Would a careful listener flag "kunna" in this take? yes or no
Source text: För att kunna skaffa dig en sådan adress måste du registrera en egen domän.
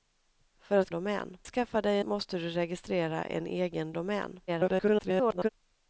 yes